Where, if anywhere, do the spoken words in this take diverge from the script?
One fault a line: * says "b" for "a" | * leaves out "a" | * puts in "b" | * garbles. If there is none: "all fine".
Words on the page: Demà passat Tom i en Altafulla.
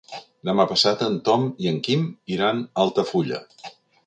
* puts in "en"
* puts in "Quim iran a"